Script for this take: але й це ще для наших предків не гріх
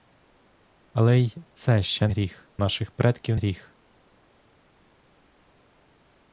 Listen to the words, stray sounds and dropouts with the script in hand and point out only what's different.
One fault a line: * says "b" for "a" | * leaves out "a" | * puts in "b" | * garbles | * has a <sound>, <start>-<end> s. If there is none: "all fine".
* says "гріх" for "для"
* leaves out "не"